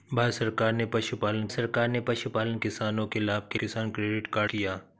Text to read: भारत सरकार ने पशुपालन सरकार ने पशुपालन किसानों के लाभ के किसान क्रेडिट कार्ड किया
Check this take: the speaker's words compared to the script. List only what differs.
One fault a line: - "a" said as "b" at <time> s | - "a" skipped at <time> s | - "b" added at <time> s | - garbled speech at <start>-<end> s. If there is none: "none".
none